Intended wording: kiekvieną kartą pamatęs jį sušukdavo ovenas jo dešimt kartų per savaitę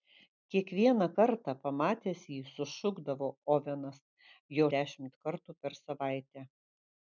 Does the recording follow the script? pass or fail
pass